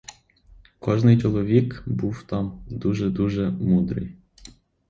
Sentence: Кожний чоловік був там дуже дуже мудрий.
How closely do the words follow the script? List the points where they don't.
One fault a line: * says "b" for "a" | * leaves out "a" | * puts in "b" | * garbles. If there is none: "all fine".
all fine